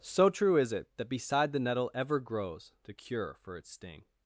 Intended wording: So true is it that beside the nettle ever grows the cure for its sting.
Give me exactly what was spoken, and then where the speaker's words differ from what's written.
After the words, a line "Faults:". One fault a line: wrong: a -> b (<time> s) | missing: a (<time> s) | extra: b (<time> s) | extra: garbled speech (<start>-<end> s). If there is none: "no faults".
So true is it that beside the nettle ever grows the cure for its sting.
Faults:
no faults